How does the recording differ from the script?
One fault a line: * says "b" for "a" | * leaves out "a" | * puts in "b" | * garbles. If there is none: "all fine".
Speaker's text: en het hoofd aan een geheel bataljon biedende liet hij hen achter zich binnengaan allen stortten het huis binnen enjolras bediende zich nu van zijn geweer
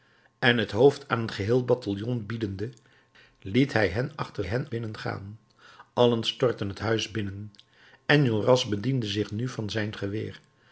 * says "hen" for "zich"